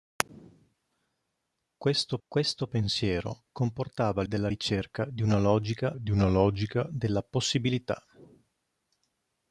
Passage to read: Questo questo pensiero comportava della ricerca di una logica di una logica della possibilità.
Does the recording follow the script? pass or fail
pass